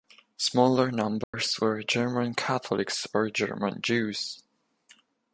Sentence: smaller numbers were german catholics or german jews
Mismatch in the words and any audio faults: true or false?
true